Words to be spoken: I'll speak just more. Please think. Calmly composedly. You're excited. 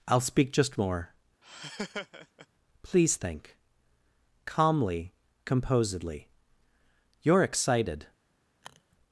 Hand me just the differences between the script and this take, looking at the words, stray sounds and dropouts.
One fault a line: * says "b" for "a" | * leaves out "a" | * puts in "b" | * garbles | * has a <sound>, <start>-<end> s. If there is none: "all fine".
* has a laugh, 1.4-2.5 s
* has a sniff, 8.6-9.0 s